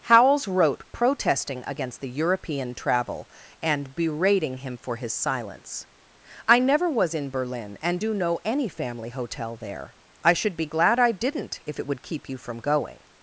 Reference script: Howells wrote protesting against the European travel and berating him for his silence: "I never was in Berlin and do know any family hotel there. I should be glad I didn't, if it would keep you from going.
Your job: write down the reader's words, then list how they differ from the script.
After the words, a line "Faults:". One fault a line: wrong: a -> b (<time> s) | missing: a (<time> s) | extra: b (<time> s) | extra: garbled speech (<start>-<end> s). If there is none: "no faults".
Howells wrote protesting against the European travel and berating him for his silence: "I never was in Berlin and do know any family hotel there. I should be glad I didn't, if it would keep you from going.
Faults:
no faults